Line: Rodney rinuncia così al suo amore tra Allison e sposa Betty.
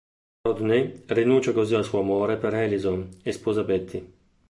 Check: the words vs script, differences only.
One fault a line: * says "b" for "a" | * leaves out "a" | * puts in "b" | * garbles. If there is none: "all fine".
* says "per" for "tra"